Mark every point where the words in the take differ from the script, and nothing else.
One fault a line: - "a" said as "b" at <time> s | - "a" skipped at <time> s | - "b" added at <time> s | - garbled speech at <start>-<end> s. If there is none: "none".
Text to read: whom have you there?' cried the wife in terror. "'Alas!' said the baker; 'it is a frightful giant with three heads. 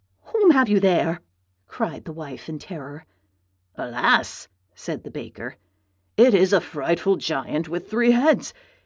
none